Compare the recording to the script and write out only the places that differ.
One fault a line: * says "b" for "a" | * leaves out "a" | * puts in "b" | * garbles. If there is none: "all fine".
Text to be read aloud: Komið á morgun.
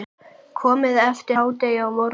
* puts in "eftir hádegi"